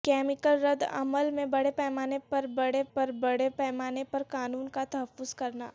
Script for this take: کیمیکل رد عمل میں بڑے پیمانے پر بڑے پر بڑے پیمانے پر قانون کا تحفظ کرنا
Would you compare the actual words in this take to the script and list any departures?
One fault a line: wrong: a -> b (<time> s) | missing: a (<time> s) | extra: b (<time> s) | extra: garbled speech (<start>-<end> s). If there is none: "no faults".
no faults